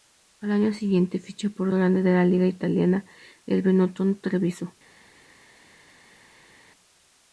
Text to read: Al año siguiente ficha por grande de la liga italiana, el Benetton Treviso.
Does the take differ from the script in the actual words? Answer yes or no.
no